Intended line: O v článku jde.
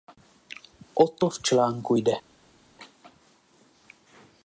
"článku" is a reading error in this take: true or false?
false